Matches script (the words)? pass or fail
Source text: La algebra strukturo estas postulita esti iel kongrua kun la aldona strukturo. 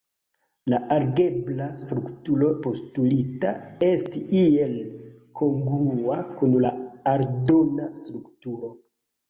fail